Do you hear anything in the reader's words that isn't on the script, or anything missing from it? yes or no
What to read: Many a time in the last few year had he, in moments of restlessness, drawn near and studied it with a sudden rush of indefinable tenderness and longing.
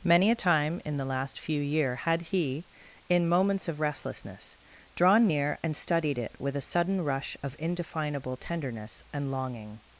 no